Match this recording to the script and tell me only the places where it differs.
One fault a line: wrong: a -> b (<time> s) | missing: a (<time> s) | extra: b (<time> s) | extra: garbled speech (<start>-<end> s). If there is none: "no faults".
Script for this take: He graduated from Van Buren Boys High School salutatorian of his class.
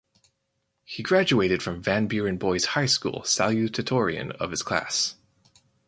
no faults